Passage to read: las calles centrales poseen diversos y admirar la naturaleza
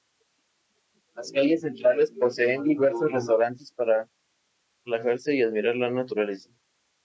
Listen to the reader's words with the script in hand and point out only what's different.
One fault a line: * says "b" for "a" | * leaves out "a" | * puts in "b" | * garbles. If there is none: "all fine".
* puts in "restaurantes para relajarse"